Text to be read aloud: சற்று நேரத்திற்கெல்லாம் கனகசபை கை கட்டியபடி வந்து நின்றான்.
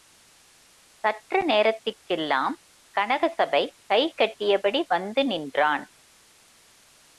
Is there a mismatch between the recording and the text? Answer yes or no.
no